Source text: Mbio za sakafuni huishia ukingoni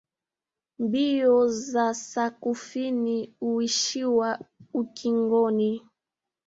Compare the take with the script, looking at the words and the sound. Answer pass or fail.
pass